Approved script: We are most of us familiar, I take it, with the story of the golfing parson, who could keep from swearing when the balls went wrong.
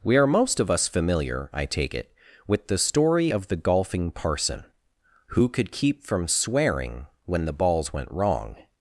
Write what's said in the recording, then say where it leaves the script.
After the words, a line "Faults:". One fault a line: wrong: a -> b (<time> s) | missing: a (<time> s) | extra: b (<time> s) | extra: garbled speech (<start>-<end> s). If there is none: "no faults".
We are most of us familiar, I take it, with the story of the golfing parson, who could keep from swearing when the balls went wrong.
Faults:
no faults